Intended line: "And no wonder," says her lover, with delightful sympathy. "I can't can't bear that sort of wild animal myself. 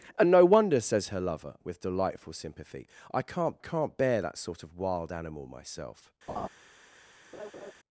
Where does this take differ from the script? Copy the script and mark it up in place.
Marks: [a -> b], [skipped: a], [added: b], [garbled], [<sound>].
"And no wonder," says her lover, with delightful sympathy. "I can't can't bear that sort of wild animal myself. [laugh] [laugh]